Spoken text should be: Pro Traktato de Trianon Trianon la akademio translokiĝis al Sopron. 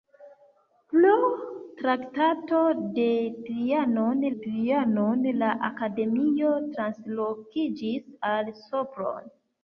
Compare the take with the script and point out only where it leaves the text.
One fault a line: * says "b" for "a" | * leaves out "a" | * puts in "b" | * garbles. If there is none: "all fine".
all fine